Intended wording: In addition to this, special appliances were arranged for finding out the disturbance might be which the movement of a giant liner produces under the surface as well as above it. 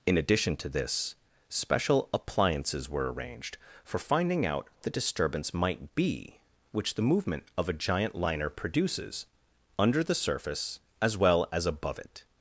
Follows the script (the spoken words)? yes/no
yes